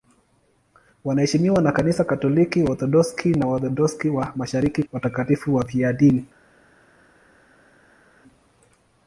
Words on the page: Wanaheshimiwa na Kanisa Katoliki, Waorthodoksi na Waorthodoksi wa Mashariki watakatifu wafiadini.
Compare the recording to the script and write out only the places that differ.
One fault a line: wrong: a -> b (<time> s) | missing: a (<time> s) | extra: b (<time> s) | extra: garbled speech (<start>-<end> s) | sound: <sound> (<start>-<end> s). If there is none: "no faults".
no faults